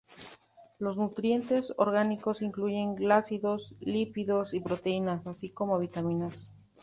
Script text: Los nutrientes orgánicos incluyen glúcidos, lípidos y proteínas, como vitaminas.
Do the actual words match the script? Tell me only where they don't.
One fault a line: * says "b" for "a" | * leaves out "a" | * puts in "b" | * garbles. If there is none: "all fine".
* puts in "así"